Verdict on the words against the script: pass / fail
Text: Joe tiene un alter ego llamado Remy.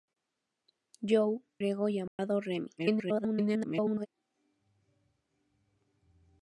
fail